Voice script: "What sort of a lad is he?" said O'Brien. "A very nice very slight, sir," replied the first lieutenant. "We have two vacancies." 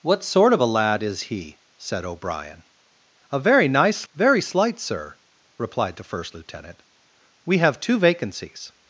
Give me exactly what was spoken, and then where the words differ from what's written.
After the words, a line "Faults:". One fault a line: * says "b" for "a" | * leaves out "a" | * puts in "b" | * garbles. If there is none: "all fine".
"What sort of a lad is he?" said O'Brien. "A very nice very slight, sir," replied the first lieutenant. "We have two vacancies."
Faults:
all fine